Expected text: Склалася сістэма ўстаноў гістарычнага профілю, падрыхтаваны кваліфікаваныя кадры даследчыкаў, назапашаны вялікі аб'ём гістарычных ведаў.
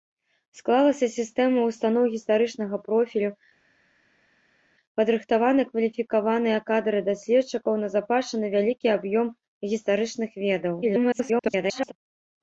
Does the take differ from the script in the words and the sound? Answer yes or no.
yes